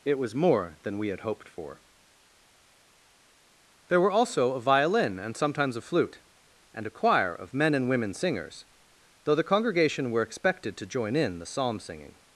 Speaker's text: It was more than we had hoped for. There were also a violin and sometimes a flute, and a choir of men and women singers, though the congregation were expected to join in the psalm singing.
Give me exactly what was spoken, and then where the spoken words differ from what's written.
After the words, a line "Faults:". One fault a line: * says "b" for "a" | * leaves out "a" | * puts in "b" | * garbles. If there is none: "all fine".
It was more than we had hoped for. There were also a violin and sometimes a flute, and a choir of men and women singers, though the congregation were expected to join in the psalm singing.
Faults:
all fine